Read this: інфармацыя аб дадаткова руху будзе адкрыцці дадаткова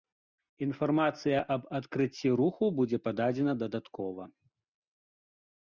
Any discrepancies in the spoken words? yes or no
yes